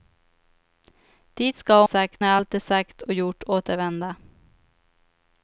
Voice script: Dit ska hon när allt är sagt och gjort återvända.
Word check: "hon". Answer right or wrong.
wrong